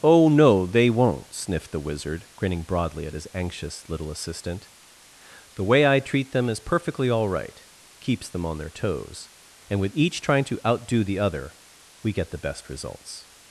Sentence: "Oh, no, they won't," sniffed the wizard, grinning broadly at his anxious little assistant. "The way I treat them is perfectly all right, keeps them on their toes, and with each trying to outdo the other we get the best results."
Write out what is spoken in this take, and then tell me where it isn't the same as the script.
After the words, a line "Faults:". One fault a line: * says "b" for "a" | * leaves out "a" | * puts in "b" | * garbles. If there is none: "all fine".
"Oh, no, they won't," sniffed the wizard, grinning broadly at his anxious little assistant. "The way I treat them is perfectly all right, keeps them on their toes, and with each trying to outdo the other we get the best results."
Faults:
all fine